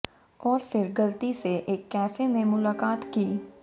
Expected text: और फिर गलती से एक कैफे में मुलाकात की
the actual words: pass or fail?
pass